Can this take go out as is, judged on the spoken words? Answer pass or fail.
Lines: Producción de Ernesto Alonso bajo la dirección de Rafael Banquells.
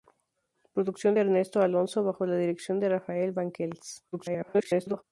fail